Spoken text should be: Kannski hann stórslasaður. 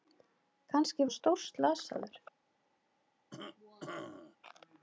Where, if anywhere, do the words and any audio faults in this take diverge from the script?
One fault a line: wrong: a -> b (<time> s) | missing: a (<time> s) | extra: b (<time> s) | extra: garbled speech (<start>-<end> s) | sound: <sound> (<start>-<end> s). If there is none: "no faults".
sound: cough (3.3-4.4 s)